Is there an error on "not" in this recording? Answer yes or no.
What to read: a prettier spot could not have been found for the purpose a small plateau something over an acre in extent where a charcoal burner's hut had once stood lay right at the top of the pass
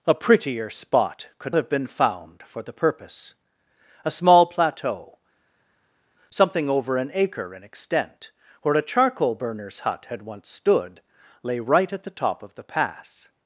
yes